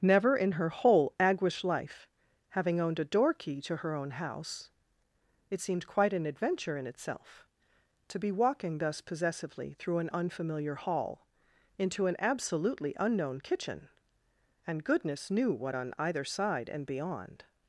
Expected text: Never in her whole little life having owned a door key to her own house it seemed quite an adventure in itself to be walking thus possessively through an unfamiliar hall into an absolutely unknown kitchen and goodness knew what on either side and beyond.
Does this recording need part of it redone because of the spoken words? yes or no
yes